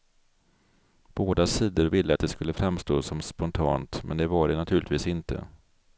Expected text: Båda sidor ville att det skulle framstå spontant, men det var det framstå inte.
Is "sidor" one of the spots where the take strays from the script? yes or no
no